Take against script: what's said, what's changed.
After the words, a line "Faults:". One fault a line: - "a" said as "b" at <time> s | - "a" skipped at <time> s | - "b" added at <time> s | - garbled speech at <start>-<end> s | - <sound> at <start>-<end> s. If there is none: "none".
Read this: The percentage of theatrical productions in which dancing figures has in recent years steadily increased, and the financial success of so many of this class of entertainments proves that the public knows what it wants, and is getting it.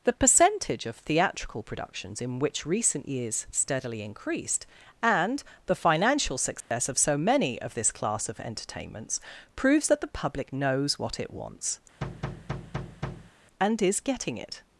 The percentage of theatrical productions in which recent years steadily increased, and the financial success of so many of this class of entertainments proves that the public knows what it wants, and is getting it.
Faults:
- "dancing figures has in" skipped at 2.6 s
- dropout at 6.6-6.7 s
- thud at 12.0-13.3 s